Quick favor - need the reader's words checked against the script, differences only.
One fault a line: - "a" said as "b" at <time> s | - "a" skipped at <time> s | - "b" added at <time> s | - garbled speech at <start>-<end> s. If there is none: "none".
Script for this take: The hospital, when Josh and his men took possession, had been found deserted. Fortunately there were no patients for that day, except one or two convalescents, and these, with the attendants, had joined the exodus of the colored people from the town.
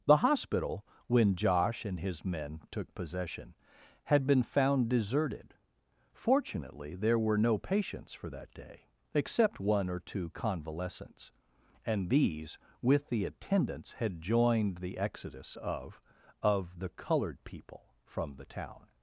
- "of" added at 16.4 s